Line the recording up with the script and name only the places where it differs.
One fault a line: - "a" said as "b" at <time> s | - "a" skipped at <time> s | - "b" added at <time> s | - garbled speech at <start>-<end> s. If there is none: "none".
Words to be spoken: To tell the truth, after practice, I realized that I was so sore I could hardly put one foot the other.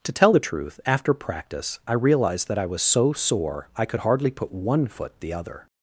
none